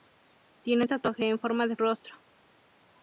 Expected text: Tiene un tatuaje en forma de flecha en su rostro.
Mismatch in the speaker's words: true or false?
true